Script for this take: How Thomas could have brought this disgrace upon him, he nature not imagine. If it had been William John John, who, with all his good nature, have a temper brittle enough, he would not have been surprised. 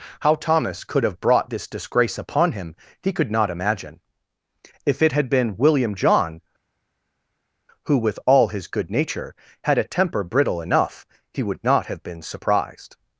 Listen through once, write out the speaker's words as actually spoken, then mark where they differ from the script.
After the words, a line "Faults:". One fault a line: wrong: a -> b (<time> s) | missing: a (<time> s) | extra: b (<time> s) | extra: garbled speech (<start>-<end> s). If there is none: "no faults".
How Thomas could have brought this disgrace upon him, he could not imagine. If it had been William John, who, with all his good nature, had a temper brittle enough, he would not have been surprised.
Faults:
wrong: nature -> could (3.1 s)
missing: John (6.4 s)
wrong: have -> had (9.6 s)